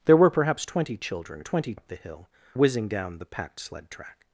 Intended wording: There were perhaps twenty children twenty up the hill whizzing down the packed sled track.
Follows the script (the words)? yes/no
yes